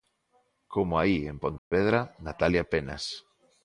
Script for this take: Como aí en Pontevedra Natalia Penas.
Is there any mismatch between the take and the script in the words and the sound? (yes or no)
yes